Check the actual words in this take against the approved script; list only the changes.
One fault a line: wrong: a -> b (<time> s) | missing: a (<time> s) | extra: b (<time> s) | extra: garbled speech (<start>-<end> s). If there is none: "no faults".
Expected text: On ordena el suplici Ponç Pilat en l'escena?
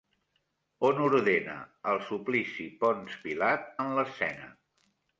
no faults